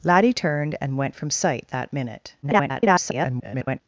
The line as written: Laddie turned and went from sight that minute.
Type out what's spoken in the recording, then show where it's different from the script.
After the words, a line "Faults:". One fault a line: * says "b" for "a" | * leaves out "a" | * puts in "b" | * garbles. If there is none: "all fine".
Laddie turned and went from sight that minute. [garbled]
Faults:
* garbles